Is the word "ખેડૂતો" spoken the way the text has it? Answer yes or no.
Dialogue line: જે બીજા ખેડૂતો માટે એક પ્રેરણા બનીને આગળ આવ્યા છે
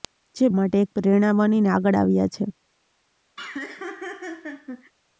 no